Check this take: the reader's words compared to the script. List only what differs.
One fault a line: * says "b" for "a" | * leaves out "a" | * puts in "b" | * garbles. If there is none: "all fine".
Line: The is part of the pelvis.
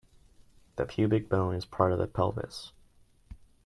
* puts in "pubic bone"